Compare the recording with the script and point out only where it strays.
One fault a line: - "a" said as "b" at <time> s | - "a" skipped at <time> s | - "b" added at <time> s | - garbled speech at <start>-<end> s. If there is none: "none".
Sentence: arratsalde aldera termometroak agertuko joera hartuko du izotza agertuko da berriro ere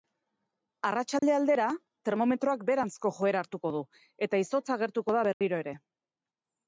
- "agertuko" said as "beheranzko" at 2.7 s
- "eta" added at 4.3 s